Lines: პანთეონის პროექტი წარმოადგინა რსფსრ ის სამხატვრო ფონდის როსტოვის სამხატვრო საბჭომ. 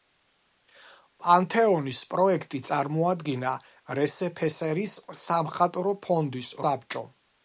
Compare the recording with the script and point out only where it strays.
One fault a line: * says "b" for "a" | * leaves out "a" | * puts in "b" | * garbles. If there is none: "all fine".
* leaves out "როსტოვის სამხატვრო"